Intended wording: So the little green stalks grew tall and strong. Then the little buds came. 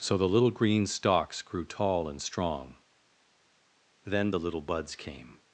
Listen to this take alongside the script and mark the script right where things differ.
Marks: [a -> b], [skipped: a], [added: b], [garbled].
So the little green stalks grew tall and strong. Then the little buds came.